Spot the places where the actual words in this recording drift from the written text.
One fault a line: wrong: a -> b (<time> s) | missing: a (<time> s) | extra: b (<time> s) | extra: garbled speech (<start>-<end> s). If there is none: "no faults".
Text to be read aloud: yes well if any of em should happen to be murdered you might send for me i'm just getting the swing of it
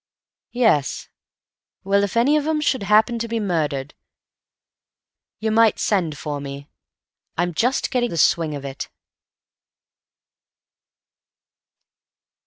no faults